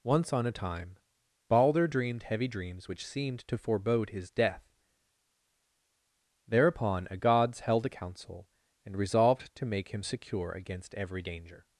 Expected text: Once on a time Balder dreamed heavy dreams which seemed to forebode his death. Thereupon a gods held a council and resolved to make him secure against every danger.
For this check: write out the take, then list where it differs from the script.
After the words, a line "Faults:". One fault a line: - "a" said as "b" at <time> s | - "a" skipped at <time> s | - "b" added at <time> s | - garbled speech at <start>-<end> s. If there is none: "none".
Once on a time Balder dreamed heavy dreams which seemed to forebode his death. Thereupon a gods held a council and resolved to make him secure against every danger.
Faults:
none